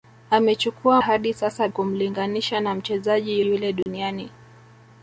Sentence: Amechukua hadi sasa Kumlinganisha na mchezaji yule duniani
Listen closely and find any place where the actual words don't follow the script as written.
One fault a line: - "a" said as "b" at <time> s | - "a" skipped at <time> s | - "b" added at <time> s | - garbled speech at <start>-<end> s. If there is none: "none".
none